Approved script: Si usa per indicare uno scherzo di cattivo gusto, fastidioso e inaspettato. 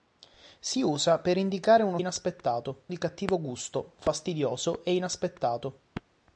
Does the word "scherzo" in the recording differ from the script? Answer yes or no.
yes